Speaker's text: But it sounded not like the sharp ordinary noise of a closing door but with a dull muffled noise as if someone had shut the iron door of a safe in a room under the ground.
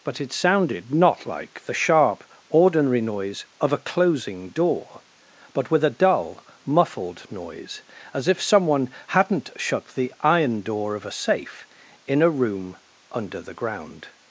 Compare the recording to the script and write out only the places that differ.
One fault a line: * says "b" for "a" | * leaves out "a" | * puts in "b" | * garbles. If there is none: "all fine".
* says "hadn't" for "had"